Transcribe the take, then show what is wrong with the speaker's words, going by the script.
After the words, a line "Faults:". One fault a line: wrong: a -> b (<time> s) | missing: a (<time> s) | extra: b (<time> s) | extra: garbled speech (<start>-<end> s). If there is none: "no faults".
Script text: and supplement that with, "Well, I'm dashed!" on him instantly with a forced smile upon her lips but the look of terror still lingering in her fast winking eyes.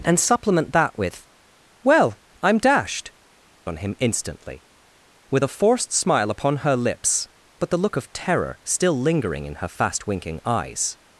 and supplement that with, "Well, I'm dashed!" on him instantly with a forced smile upon her lips but the look of terror still lingering in her fast winking eyes.
Faults:
no faults